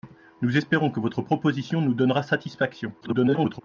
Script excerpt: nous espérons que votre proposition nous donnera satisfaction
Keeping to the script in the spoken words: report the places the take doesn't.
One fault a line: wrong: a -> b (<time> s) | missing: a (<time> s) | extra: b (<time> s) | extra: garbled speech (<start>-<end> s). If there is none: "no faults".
extra: garbled speech (3.0-3.6 s)